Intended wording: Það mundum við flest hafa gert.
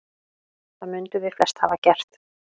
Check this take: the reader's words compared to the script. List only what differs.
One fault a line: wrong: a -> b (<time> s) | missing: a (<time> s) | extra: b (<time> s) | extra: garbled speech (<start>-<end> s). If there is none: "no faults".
no faults